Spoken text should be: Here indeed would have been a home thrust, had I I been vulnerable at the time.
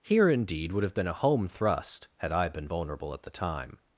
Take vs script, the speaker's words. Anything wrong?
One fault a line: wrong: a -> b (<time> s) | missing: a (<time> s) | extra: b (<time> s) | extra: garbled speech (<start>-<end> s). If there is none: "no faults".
missing: I (2.5 s)